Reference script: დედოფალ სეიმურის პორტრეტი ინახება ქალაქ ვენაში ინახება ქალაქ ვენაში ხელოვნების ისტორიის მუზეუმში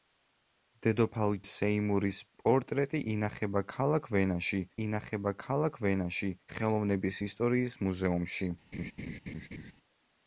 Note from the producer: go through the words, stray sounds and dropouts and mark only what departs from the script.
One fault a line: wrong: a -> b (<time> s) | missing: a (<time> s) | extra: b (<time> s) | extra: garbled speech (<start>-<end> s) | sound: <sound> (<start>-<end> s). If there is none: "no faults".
sound: laugh (8.7-9.7 s)